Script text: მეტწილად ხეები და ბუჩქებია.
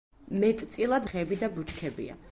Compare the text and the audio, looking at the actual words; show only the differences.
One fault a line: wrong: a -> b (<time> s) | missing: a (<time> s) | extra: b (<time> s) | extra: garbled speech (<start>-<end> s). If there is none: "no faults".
no faults